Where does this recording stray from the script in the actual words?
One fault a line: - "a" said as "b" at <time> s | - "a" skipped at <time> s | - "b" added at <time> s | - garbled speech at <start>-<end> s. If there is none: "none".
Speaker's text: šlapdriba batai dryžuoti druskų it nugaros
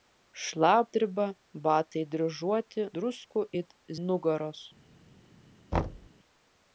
none